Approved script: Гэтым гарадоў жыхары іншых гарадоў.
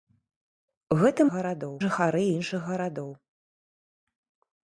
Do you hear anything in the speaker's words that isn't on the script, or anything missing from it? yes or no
no